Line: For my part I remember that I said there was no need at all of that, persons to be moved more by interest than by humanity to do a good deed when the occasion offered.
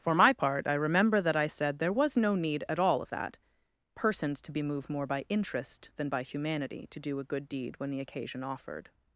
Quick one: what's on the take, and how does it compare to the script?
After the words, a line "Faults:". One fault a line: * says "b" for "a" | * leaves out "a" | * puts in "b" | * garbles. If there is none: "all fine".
For my part I remember that I said there was no need at all of that, persons to be moved more by interest than by humanity to do a good deed when the occasion offered.
Faults:
all fine